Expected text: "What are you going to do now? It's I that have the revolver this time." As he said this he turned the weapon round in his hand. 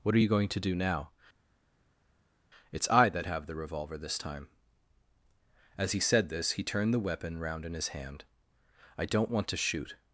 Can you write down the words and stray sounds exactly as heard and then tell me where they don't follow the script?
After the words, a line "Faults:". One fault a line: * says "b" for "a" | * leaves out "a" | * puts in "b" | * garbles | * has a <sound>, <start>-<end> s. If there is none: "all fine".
"What are you going to do now? It's I that have the revolver this time." As he said this he turned the weapon round in his hand. "I don't want to shoot
Faults:
* puts in "I don't want to shoot"